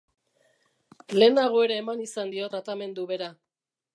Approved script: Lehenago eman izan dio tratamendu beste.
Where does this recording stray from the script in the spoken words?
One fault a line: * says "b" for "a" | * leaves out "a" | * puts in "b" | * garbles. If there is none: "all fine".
* puts in "ere"
* says "bera" for "beste"